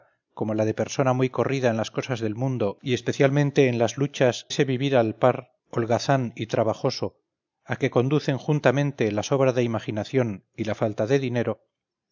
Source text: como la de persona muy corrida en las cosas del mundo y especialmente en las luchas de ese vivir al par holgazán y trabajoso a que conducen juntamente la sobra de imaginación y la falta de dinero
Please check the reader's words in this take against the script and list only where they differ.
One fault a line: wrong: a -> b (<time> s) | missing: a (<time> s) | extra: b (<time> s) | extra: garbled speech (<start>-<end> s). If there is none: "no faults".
missing: de (4.5 s)